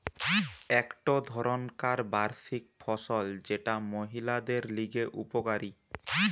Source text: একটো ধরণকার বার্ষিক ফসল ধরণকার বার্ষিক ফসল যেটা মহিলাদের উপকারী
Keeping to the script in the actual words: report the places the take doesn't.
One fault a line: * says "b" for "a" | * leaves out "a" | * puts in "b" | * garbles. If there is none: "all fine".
* leaves out "ধরণকার বার্ষিক ফসল"
* puts in "লিগে"